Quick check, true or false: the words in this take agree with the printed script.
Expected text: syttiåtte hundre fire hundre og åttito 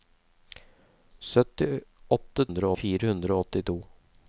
true